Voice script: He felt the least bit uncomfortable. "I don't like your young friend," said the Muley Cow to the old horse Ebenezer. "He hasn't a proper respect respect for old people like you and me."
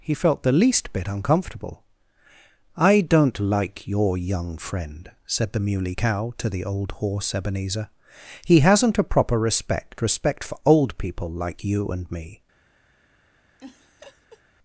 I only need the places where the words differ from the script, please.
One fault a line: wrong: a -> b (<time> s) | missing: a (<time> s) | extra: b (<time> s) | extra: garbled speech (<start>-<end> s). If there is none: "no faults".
no faults